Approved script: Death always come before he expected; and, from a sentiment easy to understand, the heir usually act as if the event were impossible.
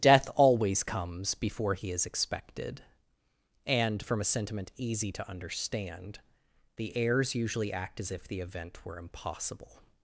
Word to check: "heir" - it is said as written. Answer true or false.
false